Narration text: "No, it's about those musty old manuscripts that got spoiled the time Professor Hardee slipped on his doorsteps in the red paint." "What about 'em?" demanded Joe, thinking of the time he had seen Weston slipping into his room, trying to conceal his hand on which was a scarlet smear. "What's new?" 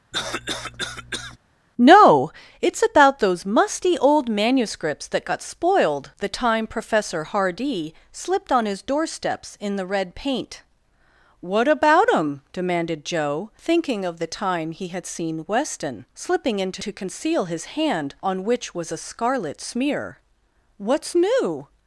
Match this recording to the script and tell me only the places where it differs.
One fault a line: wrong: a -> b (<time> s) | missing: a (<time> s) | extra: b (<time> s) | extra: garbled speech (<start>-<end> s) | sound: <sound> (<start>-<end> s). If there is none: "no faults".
sound: cough (0.1-1.4 s)
missing: his room trying (16.8 s)